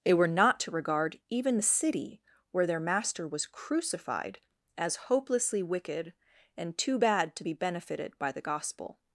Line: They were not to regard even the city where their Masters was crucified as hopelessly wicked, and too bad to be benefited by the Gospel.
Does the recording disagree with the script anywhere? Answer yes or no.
yes